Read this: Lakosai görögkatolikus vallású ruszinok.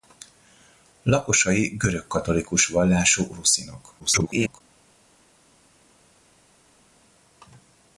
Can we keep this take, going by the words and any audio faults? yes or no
no